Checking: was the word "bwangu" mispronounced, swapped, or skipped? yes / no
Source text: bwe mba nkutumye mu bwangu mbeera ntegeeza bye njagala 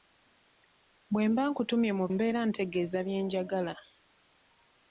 yes